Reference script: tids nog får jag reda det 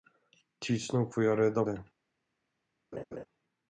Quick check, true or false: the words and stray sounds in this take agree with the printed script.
false